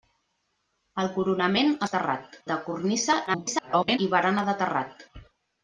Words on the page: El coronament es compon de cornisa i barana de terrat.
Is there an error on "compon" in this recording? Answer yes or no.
yes